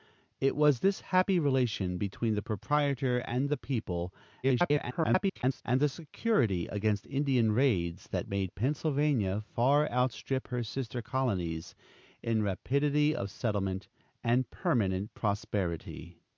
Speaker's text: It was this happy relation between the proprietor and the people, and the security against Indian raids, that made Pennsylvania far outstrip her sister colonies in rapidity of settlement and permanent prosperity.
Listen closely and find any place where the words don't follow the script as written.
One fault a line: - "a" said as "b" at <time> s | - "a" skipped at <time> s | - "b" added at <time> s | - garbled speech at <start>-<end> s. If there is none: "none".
- garbled speech at 4.4-5.6 s